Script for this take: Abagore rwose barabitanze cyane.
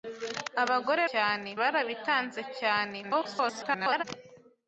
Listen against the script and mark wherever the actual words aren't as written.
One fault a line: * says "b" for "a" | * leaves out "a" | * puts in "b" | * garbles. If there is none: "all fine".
* says "cyane" for "rwose"
* garbles